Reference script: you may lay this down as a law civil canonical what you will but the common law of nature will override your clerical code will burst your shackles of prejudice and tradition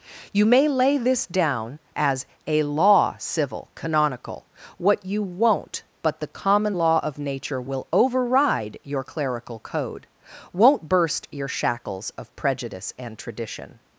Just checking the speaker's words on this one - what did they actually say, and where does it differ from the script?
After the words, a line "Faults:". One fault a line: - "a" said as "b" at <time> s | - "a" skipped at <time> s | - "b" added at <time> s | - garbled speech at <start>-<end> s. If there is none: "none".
you may lay this down as a law civil canonical what you won't but the common law of nature will override your clerical code won't burst your shackles of prejudice and tradition
Faults:
- "will" said as "won't" at 5.2 s
- "will" said as "won't" at 10.5 s